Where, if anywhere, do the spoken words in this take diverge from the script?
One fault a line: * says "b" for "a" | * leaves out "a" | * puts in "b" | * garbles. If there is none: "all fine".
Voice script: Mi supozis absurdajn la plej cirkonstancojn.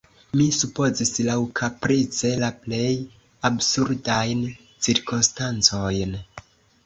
* says "laŭkaprice" for "absurdajn"
* puts in "absurdajn"